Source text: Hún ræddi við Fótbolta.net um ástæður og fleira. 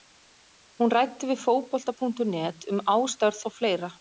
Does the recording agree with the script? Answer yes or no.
yes